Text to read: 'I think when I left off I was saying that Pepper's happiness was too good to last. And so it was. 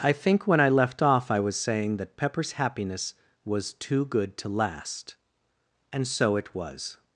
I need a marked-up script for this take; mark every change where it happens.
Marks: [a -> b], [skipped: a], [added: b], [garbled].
'I think when I left off I was saying that Pepper's happiness was too good to last. And so it was.